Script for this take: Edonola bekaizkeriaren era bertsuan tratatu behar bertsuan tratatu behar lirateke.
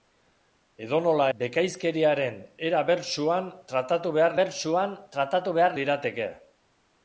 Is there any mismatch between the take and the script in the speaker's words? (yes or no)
no